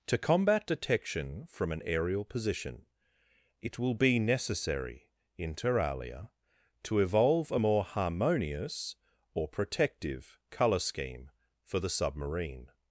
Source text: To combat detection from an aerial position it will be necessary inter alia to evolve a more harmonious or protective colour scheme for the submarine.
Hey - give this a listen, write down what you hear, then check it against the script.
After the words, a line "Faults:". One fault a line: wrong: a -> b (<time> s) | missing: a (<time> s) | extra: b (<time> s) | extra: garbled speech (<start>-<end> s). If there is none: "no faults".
To combat detection from an aerial position it will be necessary inter alia to evolve a more harmonious or protective colour scheme for the submarine.
Faults:
no faults